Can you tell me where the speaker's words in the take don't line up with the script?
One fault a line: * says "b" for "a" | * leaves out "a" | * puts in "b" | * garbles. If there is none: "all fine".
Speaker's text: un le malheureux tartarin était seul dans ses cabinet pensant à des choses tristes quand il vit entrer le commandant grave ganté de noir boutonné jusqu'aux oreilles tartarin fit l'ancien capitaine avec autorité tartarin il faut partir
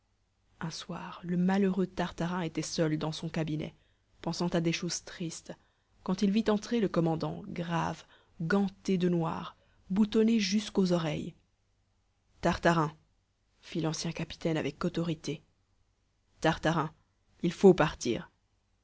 * puts in "soir"
* says "son" for "ses"